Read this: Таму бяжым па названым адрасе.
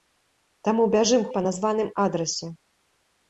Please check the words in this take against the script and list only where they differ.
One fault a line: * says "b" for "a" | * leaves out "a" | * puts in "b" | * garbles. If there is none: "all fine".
all fine